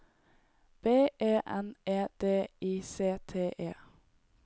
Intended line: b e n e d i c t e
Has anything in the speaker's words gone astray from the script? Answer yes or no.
no